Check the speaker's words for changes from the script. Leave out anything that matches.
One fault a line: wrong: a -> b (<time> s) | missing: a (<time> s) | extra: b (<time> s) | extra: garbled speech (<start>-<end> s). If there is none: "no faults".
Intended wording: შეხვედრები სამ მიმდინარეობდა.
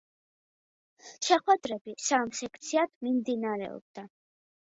extra: სექციად (2.4 s)